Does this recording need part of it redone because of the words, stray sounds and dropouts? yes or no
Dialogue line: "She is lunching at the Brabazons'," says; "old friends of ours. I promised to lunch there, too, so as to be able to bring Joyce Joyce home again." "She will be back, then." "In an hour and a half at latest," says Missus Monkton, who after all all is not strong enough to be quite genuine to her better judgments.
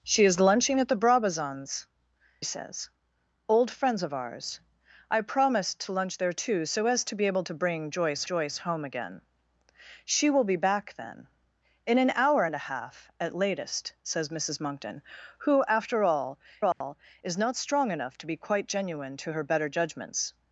yes